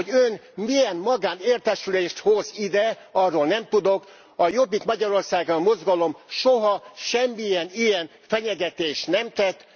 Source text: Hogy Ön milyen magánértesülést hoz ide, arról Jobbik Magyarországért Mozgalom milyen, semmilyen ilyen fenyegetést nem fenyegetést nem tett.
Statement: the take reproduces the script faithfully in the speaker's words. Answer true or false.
false